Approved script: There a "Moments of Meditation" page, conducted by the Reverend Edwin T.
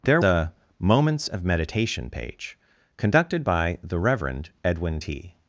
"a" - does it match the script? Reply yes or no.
yes